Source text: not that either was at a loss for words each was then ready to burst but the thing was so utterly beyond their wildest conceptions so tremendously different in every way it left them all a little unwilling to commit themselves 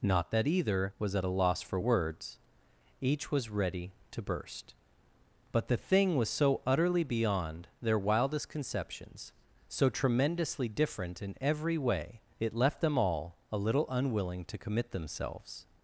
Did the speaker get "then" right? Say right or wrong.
wrong